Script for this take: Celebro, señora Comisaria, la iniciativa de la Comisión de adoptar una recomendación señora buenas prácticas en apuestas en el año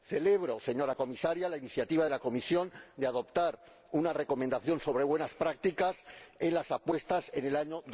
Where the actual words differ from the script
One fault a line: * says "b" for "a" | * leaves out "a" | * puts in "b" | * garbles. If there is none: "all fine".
* says "sobre" for "señora"
* puts in "las"